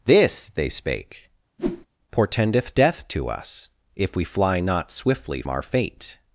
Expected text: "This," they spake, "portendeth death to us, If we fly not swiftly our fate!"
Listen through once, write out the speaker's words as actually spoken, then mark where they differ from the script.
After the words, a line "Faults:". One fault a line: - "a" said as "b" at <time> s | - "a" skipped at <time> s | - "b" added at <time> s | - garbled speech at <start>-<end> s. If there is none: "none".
"This," they spake, "portendeth death to us, If we fly not swiftly our fate!"
Faults:
none